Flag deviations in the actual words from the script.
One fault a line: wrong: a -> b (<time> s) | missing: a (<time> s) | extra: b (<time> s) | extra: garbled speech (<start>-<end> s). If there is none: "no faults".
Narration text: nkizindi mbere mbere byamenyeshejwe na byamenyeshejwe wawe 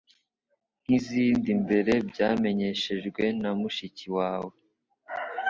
missing: mbere (1.9 s)
wrong: byamenyeshejwe -> mushiki (3.6 s)